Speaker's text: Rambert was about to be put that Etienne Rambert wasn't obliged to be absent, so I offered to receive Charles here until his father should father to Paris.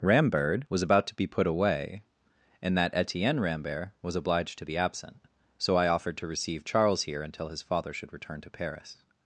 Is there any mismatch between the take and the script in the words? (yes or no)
yes